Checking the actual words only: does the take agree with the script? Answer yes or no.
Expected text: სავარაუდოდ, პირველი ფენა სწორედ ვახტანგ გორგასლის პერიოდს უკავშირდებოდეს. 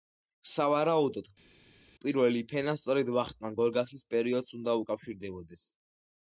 no